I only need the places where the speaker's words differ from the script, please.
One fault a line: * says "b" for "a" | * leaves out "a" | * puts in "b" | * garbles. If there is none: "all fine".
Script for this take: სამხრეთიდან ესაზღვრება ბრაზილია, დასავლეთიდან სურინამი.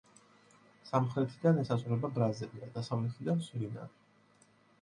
all fine